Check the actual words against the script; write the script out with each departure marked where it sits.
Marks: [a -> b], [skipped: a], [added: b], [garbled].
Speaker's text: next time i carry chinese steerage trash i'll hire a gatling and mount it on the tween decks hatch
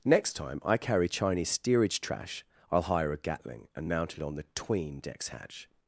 next time i carry chinese steerage trash i'll hire a gatling and mount it on the tween decks hatch